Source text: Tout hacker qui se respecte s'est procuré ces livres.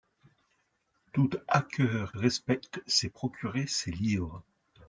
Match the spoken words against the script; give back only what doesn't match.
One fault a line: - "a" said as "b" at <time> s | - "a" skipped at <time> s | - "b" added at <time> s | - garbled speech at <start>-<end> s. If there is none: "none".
- "qui se" skipped at 2.1 s